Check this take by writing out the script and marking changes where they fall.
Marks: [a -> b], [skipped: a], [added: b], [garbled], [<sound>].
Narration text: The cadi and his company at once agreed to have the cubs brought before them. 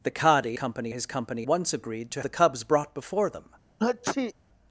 The cadi [and -> company] his company [skipped: at] once agreed to [skipped: have] the cubs brought before them. [sneeze]